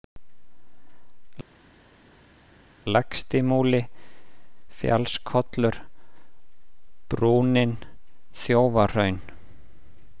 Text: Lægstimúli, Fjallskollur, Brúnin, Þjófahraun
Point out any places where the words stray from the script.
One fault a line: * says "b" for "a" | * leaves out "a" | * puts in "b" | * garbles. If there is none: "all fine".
all fine